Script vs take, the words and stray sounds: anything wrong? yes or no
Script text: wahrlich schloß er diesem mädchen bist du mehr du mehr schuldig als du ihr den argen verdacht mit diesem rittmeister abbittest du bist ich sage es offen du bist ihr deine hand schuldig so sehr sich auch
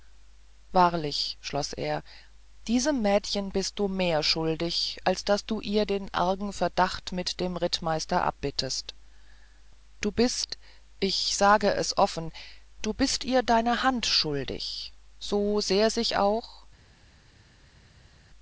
yes